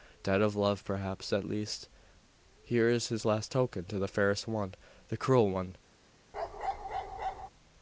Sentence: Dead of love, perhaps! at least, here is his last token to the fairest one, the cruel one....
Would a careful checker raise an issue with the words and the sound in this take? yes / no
yes